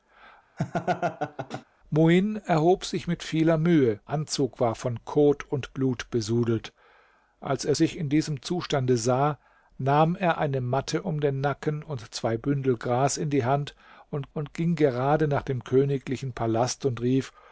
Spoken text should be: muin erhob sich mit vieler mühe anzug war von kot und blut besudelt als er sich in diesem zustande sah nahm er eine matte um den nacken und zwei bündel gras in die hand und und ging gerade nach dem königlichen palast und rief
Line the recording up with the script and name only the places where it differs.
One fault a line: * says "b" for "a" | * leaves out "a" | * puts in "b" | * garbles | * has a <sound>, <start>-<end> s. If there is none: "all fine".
* has a laugh, 0.6-1.6 s